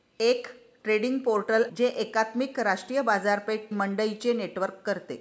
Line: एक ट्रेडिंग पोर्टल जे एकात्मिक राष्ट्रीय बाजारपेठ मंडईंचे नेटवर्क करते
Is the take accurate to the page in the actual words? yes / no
yes